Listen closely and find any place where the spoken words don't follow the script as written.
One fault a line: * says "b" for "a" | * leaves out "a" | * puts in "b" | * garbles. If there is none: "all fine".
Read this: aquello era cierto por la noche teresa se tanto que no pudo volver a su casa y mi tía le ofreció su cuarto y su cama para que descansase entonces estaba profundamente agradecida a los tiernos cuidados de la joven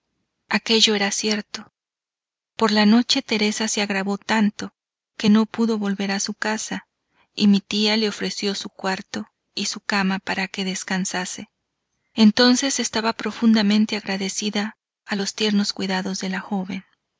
* puts in "agravó"